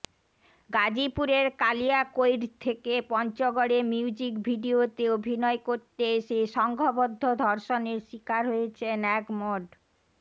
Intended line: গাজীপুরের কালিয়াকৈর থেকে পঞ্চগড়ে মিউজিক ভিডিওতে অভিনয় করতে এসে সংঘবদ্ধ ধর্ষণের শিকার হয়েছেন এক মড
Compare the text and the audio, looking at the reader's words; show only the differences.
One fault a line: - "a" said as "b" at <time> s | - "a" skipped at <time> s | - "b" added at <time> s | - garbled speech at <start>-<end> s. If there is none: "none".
none